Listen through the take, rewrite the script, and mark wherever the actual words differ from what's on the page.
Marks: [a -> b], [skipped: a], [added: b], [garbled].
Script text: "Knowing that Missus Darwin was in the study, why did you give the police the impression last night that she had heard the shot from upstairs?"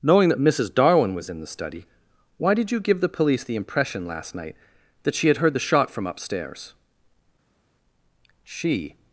"Knowing that Missus Darwin was in the study, why did you give the police the impression last night that she had heard the shot from upstairs?" [added: She]